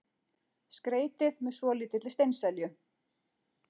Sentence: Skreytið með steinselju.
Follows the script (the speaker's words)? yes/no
no